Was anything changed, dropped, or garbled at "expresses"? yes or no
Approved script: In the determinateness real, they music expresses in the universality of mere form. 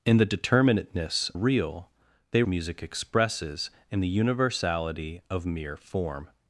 no